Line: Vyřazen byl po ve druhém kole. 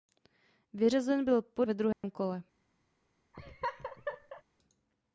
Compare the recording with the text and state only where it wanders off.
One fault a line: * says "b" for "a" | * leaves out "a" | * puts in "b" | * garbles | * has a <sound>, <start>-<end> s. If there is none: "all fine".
* has a dropout, 1.9-2.0 s
* has a laugh, 3.3-4.4 s